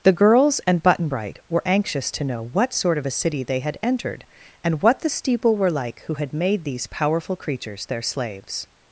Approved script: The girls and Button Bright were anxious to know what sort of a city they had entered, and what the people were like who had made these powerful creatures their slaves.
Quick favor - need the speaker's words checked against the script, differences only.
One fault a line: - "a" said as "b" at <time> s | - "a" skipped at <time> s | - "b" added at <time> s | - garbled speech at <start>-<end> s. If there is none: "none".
- "people" said as "steeple" at 5.1 s